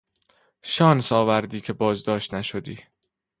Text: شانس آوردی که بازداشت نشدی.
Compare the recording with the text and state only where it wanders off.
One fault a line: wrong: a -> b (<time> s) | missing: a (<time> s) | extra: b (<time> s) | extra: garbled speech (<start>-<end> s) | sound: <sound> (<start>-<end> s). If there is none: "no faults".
no faults